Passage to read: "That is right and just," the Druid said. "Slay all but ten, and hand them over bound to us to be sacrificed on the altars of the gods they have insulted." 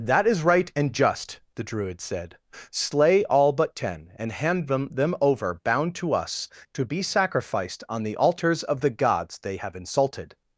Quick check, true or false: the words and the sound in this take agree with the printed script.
false